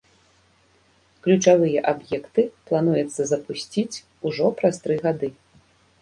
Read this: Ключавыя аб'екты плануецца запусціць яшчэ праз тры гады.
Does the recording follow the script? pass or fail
fail